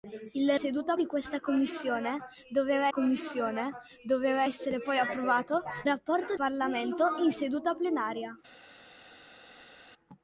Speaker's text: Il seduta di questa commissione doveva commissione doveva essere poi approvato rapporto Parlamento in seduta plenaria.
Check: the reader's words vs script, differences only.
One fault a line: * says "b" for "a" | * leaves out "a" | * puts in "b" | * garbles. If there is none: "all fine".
all fine